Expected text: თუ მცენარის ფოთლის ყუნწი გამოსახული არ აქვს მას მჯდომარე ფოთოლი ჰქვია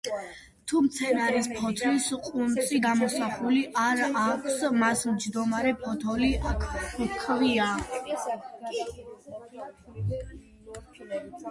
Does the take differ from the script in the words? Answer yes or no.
no